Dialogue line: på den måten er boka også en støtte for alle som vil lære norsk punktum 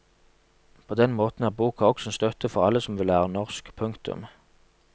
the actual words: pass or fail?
pass